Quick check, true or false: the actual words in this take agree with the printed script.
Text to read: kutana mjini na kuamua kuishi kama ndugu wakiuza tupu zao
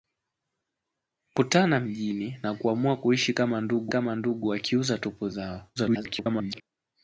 false